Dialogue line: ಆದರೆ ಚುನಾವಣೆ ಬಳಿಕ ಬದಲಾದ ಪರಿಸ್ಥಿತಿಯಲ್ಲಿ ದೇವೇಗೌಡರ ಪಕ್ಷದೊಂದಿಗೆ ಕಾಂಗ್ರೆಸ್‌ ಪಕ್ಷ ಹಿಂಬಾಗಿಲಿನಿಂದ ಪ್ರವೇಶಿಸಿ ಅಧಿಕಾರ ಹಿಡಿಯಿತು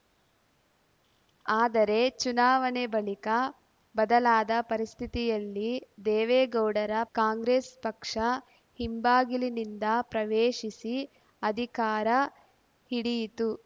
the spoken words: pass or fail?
fail